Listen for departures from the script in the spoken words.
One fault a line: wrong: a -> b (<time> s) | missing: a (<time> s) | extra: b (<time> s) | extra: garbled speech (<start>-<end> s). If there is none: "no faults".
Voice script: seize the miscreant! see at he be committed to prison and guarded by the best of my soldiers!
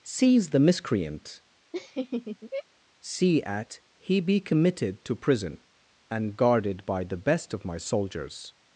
no faults